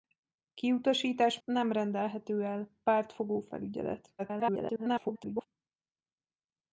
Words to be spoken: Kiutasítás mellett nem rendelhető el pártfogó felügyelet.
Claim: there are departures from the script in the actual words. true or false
true